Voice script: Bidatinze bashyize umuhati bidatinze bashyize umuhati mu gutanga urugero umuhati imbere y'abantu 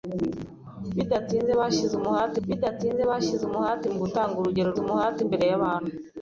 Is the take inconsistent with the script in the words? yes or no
no